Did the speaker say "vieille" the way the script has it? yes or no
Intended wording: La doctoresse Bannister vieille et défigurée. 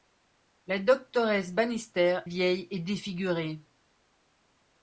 yes